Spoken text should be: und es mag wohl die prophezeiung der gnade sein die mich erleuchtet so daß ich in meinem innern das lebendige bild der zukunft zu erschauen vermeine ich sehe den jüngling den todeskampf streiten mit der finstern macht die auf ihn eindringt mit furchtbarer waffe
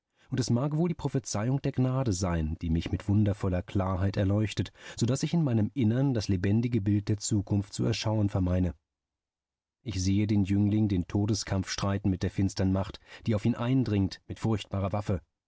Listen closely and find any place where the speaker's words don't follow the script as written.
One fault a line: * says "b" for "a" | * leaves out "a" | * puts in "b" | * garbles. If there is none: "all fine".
* puts in "mit wundervoller klarheit"